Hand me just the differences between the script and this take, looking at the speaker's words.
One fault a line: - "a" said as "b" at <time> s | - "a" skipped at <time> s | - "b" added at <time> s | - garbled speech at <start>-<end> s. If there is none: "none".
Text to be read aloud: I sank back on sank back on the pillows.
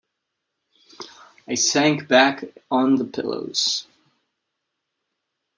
- "sank back on" skipped at 3.0 s